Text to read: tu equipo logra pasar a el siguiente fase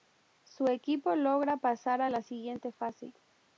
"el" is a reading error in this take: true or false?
true